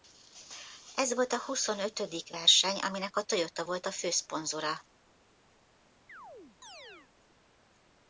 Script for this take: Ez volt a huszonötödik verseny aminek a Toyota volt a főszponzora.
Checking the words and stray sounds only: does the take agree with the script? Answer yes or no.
no